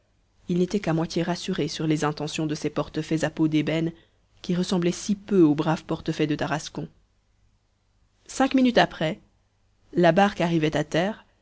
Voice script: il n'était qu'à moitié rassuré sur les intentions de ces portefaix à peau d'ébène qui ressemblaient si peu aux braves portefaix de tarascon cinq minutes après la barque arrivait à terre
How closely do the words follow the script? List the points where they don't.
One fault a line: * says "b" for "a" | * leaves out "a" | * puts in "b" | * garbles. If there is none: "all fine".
all fine